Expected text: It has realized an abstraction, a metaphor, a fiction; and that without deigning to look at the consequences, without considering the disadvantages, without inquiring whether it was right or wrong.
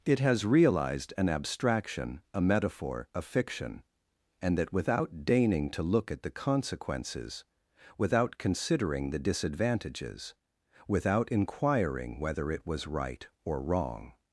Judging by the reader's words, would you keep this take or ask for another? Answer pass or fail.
pass